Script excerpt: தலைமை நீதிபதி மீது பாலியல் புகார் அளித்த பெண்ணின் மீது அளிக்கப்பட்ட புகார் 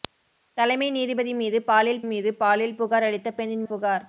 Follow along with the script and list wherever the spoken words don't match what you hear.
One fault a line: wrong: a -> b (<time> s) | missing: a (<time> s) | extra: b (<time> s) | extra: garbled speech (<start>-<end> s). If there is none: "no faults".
extra: மீது பாலியல் (2.0 s)
missing: மீது அளிக்கப்பட்ட (3.6 s)